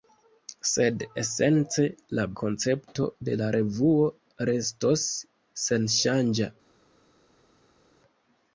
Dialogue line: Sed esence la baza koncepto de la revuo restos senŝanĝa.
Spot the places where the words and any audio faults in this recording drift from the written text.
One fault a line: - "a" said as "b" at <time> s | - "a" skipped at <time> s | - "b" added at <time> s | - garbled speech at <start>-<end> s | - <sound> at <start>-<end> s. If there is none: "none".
- "baza" skipped at 2.2 s